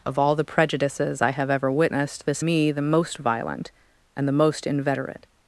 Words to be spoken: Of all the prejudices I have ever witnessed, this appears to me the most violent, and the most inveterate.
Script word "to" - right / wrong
wrong